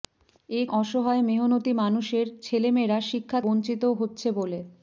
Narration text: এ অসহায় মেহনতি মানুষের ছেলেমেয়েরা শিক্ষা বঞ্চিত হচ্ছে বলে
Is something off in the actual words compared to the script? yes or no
no